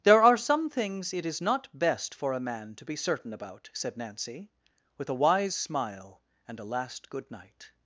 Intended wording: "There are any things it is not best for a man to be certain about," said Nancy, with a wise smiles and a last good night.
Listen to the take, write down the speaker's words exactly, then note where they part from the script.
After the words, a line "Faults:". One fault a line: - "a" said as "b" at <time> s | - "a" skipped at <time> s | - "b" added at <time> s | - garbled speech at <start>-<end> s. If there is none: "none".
"There are some things it is not best for a man to be certain about," said Nancy, with a wise smile and a last good night.
Faults:
- "any" said as "some" at 0.4 s
- "smiles" said as "smile" at 5.5 s